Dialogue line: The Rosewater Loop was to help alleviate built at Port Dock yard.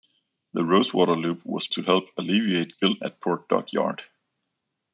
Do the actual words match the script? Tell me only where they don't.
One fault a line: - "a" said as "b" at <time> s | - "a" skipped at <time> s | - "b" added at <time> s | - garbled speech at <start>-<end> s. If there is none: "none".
none